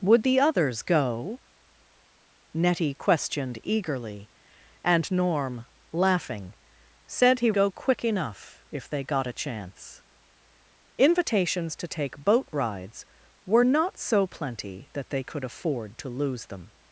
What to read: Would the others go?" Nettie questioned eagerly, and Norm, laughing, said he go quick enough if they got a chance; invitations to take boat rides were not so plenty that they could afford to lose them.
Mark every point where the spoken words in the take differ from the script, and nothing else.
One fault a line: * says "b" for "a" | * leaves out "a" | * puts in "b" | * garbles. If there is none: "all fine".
all fine